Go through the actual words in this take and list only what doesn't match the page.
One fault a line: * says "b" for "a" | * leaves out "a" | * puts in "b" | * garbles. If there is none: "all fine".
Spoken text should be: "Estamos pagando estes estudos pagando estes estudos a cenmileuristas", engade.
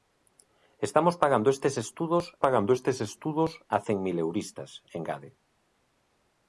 all fine